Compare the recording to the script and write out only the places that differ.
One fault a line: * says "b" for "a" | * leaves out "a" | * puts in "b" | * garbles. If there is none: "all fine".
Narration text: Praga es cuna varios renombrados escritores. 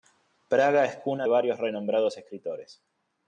all fine